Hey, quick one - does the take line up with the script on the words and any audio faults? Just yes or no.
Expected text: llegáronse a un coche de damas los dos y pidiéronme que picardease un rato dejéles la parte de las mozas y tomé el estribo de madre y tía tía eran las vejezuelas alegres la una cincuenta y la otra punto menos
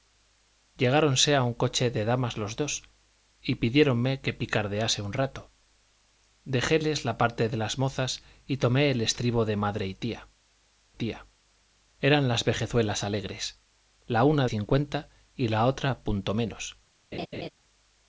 no